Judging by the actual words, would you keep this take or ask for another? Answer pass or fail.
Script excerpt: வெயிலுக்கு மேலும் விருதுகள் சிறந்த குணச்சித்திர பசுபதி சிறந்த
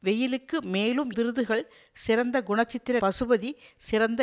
pass